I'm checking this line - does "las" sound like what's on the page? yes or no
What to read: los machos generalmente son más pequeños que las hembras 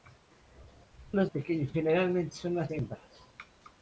no